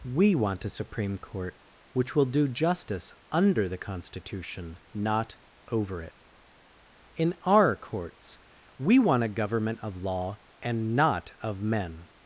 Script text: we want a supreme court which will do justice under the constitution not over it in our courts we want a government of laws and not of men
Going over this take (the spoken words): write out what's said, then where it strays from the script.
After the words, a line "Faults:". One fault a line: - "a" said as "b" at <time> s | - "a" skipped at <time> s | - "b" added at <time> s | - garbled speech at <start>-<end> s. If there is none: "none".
we want a supreme court which will do justice under the constitution not over it in our courts we want a government of law and not of men
Faults:
- "laws" said as "law" at 10.0 s